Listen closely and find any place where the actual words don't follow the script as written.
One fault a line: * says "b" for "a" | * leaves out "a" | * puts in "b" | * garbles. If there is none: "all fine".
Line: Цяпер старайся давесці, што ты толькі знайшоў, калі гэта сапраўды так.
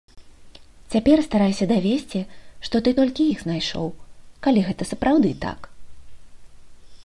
* puts in "іх"